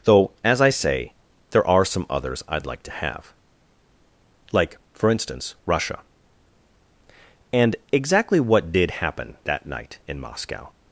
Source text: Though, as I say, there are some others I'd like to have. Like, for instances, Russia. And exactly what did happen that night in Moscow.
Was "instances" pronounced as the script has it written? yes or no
no